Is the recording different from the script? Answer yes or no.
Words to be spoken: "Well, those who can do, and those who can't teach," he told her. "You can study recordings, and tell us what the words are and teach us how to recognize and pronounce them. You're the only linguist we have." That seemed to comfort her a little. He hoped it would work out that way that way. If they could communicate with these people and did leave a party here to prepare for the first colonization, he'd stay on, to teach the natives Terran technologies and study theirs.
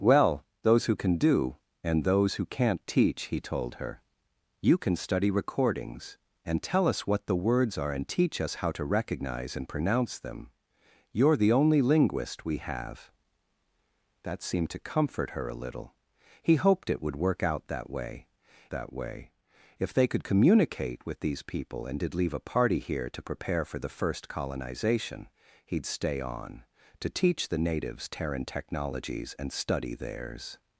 no